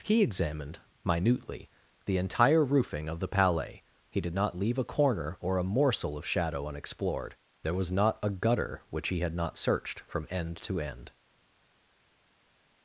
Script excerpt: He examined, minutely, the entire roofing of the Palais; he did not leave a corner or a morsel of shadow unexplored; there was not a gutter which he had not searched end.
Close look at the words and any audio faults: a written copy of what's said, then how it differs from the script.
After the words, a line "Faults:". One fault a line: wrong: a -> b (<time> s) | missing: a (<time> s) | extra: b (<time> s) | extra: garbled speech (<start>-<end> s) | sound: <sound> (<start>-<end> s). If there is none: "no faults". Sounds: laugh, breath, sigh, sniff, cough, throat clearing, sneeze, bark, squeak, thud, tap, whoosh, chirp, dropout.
He examined, minutely, the entire roofing of the Palais; he did not leave a corner or a morsel of shadow unexplored; there was not a gutter which he had not searched from end to end.
Faults:
extra: from end to (10.0 s)